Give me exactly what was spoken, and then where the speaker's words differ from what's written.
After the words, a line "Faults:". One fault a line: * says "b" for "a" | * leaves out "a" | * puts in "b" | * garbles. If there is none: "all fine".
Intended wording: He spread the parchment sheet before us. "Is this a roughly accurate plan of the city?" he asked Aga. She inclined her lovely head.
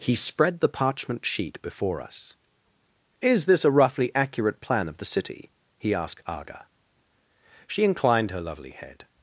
He spread the parchment sheet before us. "Is this a roughly accurate plan of the city?" he asked Aga. She inclined her lovely head.
Faults:
all fine